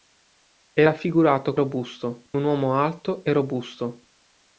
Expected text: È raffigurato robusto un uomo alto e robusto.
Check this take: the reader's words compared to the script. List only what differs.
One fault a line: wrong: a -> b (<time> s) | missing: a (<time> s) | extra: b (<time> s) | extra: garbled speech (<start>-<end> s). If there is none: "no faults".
no faults